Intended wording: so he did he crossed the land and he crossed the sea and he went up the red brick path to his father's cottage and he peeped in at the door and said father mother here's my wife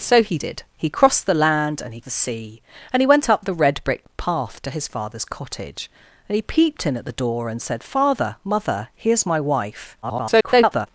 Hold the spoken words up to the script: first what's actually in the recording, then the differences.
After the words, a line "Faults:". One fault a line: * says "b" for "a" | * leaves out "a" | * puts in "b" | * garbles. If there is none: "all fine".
so he did he crossed the land and he the sea and he went up the red brick path to his father's cottage and he peeped in at the door and said father mother here's my wife [garbled]
Faults:
* leaves out "crossed"
* garbles